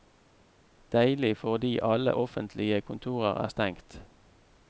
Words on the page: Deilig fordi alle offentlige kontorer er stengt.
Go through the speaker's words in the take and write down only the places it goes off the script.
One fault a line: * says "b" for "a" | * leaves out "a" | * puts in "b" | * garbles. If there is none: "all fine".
all fine